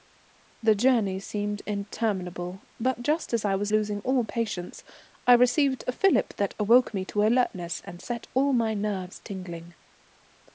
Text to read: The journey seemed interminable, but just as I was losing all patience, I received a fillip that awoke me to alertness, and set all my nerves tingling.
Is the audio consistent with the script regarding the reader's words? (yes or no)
yes